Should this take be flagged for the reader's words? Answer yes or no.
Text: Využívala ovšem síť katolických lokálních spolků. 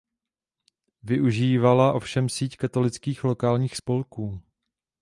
no